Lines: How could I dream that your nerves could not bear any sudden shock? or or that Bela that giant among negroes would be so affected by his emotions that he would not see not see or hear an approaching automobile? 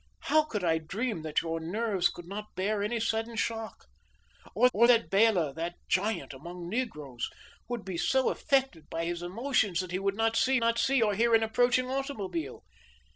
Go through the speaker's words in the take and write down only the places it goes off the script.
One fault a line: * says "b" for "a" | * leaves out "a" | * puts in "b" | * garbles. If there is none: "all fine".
all fine